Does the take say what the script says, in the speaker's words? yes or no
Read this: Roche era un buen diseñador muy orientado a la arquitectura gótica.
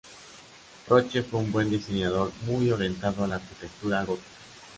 no